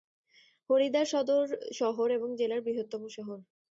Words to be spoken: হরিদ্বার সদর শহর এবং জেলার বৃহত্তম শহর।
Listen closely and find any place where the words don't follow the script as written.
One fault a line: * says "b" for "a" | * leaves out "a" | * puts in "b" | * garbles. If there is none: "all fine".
all fine